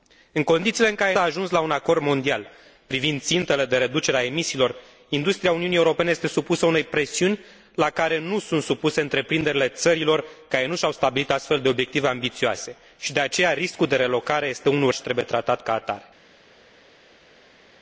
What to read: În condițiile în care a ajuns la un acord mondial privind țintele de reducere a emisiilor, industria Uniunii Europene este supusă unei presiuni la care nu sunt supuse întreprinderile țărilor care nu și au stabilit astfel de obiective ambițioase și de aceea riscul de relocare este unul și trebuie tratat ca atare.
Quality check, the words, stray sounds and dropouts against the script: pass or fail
pass